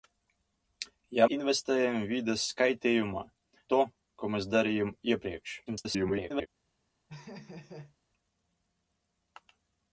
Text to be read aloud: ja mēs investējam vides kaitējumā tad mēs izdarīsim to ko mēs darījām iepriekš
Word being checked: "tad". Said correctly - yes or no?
no